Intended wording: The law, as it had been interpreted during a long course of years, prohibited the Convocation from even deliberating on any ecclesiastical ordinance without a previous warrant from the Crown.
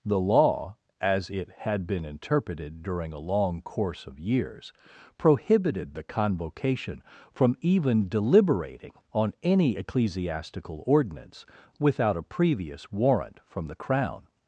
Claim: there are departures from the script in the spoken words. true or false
false